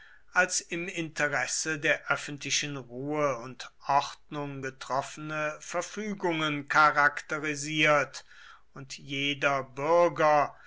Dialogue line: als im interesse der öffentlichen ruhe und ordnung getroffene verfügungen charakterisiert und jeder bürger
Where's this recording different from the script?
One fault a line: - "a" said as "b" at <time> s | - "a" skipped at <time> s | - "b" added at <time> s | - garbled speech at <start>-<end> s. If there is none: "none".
none